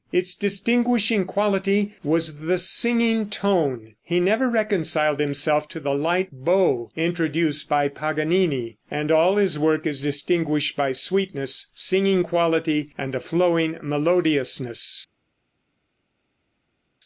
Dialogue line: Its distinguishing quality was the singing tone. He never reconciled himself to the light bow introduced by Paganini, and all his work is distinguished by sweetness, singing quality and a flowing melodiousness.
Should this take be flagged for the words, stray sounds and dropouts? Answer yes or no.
no